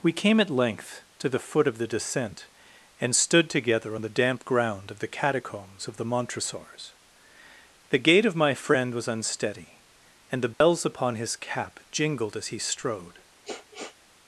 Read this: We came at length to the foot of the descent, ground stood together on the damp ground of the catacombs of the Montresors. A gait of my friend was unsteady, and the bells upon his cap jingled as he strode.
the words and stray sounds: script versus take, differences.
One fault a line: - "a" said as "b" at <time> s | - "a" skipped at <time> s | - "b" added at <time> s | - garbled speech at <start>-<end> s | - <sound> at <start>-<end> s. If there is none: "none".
- "ground" said as "and" at 3.0 s
- "A" said as "The" at 7.9 s
- dropout at 10.5-10.6 s
- sniff at 13.4-14.0 s